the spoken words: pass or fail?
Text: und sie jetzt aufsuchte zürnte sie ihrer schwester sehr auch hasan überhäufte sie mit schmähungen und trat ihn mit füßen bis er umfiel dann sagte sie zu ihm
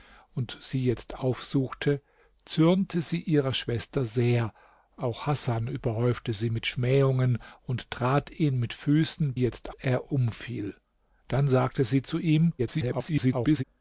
fail